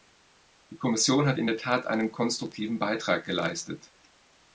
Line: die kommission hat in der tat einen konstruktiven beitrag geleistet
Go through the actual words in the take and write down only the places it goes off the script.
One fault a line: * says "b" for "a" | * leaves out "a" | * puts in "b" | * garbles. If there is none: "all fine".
all fine